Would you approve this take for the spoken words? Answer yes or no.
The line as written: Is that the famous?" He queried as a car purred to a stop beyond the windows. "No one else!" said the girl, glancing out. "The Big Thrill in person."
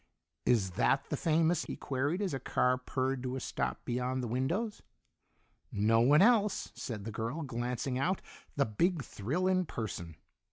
yes